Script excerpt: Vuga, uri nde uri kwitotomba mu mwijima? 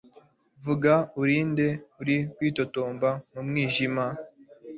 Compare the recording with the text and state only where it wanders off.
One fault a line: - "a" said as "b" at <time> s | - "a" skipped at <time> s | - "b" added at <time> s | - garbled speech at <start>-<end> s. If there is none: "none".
none